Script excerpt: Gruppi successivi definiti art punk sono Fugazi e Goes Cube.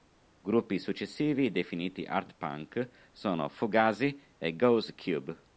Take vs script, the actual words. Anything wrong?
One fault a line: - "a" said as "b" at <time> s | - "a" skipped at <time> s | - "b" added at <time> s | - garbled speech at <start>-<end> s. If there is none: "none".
none